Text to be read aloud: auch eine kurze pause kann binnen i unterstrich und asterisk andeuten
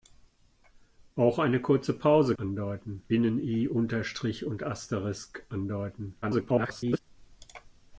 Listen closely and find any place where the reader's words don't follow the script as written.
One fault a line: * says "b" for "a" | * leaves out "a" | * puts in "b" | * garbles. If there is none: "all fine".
* says "andeuten" for "kann"
* garbles